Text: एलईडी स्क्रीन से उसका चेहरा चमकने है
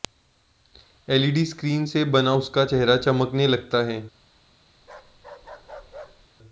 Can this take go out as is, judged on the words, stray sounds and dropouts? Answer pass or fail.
fail